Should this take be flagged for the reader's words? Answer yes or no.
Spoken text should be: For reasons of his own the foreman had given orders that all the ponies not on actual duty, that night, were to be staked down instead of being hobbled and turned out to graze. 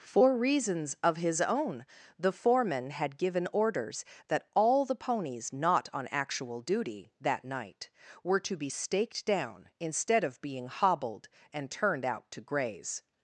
no